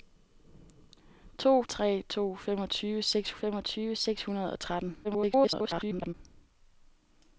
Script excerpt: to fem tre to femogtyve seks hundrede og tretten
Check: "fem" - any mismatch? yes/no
yes